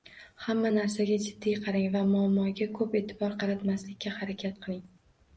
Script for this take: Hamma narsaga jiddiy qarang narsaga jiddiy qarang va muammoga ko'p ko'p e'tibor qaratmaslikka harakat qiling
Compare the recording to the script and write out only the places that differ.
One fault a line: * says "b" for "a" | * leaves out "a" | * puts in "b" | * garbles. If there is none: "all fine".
* leaves out "narsaga jiddiy qarang"
* leaves out "ko'p"